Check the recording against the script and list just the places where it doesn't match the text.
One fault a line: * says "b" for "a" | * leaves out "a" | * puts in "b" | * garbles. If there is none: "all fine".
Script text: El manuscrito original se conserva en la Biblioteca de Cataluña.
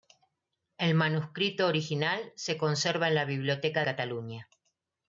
* leaves out "de"